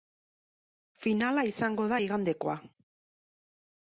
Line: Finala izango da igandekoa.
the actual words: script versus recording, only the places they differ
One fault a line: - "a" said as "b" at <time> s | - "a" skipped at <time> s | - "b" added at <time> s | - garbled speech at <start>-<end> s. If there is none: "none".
none